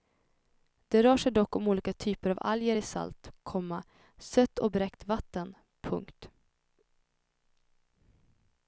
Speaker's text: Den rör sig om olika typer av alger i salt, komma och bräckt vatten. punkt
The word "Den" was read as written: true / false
false